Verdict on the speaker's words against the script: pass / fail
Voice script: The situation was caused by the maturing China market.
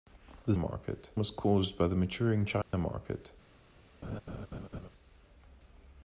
fail